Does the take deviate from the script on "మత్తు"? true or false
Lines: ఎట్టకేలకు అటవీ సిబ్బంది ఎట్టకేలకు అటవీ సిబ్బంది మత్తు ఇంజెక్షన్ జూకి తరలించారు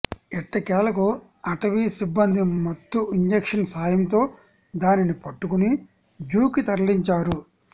true